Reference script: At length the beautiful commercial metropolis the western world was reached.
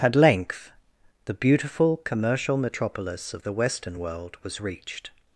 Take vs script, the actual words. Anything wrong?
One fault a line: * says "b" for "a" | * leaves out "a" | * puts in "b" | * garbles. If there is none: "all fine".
* puts in "of"